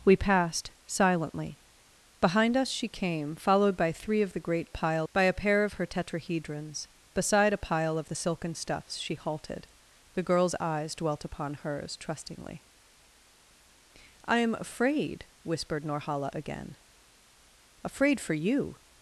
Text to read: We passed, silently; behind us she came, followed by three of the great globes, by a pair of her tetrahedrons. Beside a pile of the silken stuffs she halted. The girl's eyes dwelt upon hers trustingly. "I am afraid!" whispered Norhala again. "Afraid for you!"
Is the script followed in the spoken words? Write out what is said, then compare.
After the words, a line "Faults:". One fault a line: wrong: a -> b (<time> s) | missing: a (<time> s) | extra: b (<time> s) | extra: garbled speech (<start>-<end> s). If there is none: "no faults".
We passed, silently; behind us she came, followed by three of the great pile, by a pair of her tetrahedrons. Beside a pile of the silken stuffs she halted. The girl's eyes dwelt upon hers trustingly. "I am afraid!" whispered Norhala again. "Afraid for you!"
Faults:
wrong: globes -> pile (4.7 s)